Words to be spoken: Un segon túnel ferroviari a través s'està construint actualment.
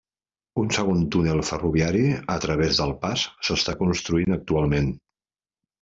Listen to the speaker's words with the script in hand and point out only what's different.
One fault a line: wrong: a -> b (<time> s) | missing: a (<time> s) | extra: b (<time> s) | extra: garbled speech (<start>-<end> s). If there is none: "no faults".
extra: del pas (2.8 s)